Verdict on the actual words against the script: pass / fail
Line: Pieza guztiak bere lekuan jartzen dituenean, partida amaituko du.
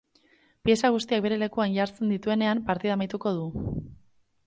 pass